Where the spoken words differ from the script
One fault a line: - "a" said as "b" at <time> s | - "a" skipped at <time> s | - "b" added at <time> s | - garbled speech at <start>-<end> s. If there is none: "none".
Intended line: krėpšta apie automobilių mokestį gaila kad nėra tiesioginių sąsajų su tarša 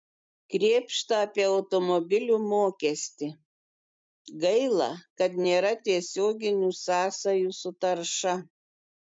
none